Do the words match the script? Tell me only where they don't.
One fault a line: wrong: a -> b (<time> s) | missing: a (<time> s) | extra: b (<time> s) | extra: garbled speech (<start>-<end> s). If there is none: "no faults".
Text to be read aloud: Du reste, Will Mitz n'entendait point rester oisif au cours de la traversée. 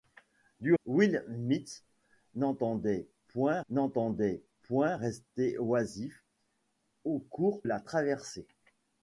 missing: reste (0.7 s)
extra: n'entendait point (3.7 s)
missing: de (7.6 s)